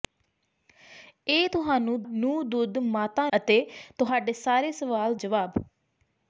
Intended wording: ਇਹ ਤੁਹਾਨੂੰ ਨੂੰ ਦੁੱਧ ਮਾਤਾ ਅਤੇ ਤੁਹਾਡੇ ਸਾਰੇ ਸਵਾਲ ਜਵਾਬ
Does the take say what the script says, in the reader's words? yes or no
yes